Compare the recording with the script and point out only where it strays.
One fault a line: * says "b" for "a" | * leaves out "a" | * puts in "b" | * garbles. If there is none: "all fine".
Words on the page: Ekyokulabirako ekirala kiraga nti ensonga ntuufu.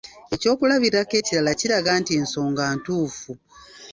all fine